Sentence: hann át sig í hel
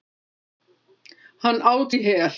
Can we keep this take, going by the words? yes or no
no